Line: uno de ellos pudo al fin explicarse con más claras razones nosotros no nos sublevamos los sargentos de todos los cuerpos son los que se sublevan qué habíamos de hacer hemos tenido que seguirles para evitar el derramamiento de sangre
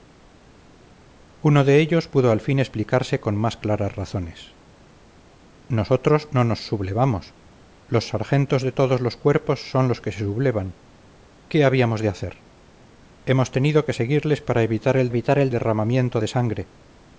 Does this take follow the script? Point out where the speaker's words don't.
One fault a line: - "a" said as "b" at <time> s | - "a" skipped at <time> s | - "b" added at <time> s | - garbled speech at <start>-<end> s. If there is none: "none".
- "evitar el" added at 15.1 s